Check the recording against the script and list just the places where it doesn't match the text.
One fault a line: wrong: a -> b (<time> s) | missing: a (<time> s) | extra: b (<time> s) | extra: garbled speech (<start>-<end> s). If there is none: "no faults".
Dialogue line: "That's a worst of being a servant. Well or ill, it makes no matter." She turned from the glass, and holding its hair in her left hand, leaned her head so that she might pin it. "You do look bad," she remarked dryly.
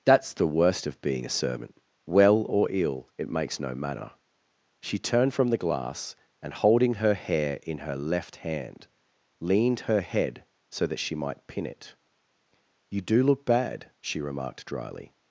wrong: a -> the (0.3 s)
wrong: its -> her (7.0 s)